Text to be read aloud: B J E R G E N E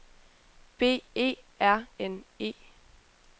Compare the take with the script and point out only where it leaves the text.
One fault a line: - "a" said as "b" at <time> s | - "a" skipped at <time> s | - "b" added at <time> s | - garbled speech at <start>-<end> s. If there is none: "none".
- "J" skipped at 1.0 s
- "G E" skipped at 1.9 s